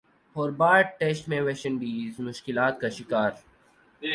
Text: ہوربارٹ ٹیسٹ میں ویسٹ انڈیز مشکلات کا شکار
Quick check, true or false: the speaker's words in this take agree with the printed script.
true